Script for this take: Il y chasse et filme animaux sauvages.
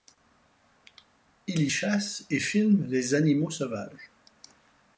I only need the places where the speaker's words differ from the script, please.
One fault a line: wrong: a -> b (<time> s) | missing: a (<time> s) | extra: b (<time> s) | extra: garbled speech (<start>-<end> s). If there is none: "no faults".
extra: les (2.9 s)